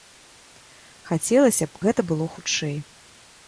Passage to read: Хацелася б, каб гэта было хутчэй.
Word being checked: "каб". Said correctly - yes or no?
no